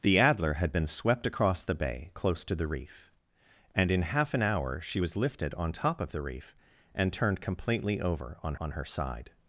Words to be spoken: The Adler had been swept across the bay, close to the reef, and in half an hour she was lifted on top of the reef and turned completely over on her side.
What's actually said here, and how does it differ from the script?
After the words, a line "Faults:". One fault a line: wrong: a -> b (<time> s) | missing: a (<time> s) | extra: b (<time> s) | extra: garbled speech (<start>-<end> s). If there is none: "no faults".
The Adler had been swept across the bay, close to the reef, and in half an hour she was lifted on top of the reef and turned completely over on on her side.
Faults:
extra: on (8.6 s)